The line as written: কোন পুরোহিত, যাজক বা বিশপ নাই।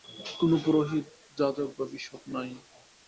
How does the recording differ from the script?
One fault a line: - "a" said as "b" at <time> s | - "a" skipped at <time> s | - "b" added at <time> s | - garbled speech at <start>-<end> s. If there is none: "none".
none